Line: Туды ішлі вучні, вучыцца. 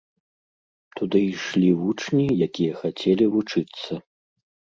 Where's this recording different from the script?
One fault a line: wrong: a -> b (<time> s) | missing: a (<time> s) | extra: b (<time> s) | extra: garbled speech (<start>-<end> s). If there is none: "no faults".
extra: якія хацелі (2.5 s)